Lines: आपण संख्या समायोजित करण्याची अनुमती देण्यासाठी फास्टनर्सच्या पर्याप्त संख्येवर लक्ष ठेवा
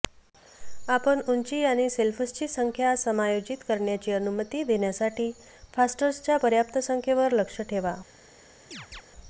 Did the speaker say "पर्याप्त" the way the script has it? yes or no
yes